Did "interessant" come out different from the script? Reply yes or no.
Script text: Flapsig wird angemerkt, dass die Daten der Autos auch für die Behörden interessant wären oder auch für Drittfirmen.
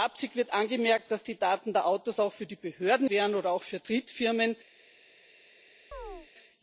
yes